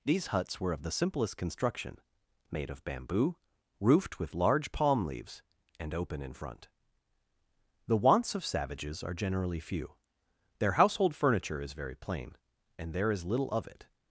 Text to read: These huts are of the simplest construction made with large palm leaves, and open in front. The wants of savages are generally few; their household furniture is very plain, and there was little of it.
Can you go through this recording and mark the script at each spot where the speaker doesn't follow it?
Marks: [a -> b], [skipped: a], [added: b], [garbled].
These huts [are -> were] of the simplest construction made [added: of bamboo roofed] with large palm leaves, and open in front. The wants of savages are generally few; their household furniture is very plain, and there [was -> is] little of it.